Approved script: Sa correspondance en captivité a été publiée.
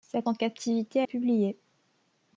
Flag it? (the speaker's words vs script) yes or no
yes